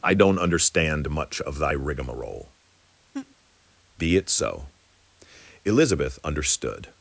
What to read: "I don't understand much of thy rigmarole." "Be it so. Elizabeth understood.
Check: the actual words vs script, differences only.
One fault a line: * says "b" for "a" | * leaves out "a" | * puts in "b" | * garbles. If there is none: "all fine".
all fine